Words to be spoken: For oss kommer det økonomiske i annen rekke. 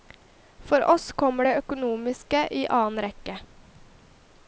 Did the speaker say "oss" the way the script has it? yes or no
yes